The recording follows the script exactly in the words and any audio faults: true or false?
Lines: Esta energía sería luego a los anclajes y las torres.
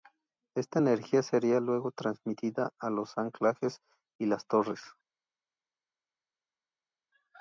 false